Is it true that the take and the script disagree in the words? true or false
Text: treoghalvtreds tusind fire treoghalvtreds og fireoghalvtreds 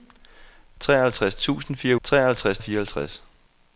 false